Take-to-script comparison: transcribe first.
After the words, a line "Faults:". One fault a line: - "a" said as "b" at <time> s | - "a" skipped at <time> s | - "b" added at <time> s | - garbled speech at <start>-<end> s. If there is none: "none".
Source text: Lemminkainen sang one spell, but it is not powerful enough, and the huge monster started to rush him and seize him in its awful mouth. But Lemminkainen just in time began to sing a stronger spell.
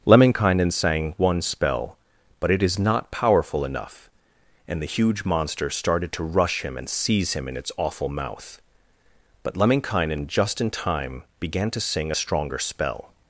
Lemminkainen sang one spell, but it is not powerful enough, and the huge monster started to rush him and seize him in its awful mouth. But Lemminkainen just in time began to sing a stronger spell.
Faults:
none